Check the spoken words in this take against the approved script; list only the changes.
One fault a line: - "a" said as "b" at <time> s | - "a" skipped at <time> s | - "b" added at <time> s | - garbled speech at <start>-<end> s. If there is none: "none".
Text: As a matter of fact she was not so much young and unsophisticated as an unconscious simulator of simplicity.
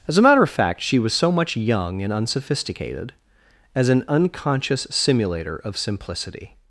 - "not" skipped at 1.1 s